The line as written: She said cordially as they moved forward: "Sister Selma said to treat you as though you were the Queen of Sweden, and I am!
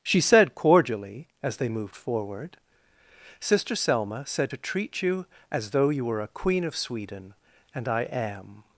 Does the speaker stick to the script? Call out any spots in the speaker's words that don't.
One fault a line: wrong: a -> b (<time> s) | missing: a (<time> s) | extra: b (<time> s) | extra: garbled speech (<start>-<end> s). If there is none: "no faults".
wrong: the -> a (6.2 s)